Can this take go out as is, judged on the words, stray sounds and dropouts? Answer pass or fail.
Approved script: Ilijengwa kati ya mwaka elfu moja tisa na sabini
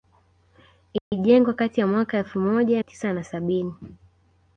fail